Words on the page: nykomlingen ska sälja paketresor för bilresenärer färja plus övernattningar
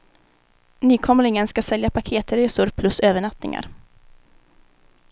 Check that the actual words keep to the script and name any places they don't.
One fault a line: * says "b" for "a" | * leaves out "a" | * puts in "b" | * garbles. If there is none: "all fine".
* leaves out "för bilresenärer färja"